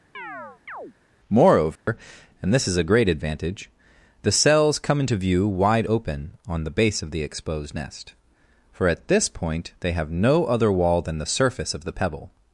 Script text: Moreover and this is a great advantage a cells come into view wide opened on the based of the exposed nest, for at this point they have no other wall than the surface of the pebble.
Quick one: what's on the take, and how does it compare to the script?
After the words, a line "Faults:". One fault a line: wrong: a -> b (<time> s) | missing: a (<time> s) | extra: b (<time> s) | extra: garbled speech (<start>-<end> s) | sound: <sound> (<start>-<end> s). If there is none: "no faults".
Moreover and this is a great advantage the cells come into view wide open on the base of the exposed nest, for at this point they have no other wall than the surface of the pebble.
Faults:
sound: chirp (0.1-0.9 s)
sound: dropout (1.8-1.9 s)
wrong: a -> the (4.2 s)
wrong: opened -> open (5.9 s)
wrong: based -> base (6.7 s)